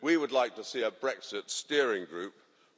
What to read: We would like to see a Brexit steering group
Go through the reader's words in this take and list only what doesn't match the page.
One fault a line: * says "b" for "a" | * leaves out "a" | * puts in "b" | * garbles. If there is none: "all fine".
all fine